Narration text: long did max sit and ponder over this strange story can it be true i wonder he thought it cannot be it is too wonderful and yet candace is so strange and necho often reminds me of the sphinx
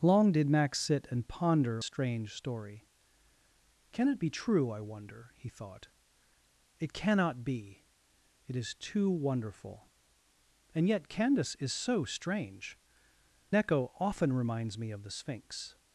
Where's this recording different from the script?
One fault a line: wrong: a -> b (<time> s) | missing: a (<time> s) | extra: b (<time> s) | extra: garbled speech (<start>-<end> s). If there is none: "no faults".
missing: over this (1.8 s)
missing: and (12.8 s)